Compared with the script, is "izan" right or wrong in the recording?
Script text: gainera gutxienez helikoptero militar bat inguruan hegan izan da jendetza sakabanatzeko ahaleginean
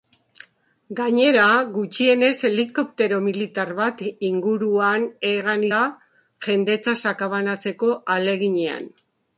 wrong